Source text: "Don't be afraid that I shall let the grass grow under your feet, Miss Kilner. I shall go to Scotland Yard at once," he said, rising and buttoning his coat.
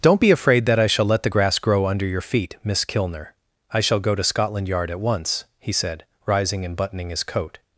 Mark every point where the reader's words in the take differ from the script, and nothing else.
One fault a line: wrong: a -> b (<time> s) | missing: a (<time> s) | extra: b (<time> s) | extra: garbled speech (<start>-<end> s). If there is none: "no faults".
no faults